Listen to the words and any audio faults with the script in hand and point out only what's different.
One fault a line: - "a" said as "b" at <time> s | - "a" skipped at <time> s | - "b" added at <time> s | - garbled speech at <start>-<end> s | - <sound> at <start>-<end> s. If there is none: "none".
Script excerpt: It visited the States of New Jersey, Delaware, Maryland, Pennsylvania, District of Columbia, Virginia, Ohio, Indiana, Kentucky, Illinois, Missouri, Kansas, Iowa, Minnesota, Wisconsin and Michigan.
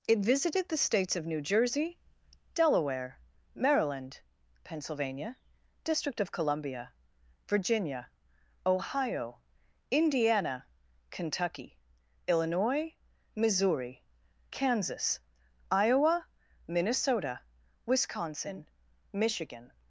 - "and" skipped at 18.7 s